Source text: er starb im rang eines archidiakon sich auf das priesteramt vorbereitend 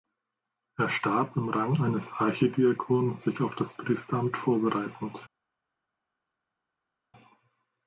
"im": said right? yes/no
yes